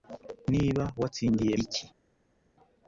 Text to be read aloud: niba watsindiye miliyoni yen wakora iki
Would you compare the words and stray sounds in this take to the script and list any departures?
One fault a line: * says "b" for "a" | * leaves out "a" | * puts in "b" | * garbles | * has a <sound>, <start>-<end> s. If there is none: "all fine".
* leaves out "miliyoni yen wakora"